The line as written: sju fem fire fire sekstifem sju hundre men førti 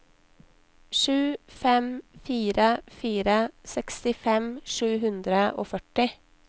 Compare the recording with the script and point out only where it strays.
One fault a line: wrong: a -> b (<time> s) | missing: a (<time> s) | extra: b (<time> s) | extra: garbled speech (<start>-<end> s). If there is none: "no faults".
wrong: men -> og (5.6 s)